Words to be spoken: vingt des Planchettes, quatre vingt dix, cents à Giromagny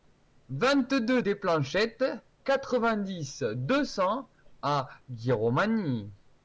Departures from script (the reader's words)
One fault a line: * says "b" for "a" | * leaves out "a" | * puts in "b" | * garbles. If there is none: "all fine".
* puts in "deux"
* puts in "deux"